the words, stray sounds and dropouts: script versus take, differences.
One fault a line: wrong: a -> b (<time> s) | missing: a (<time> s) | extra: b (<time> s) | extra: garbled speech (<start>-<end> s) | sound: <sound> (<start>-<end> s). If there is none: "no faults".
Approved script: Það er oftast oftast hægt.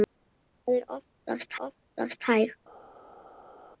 no faults